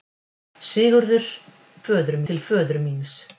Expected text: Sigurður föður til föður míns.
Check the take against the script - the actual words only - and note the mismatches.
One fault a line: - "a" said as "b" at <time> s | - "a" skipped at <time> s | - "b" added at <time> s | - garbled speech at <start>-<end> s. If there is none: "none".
none